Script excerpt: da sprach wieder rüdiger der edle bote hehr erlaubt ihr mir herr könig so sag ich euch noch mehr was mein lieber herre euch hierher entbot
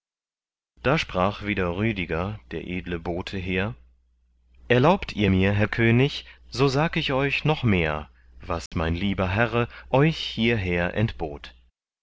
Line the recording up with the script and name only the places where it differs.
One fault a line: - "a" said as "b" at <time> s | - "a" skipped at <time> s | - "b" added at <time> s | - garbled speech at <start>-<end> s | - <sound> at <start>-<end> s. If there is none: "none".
- dropout at 8.7-8.7 s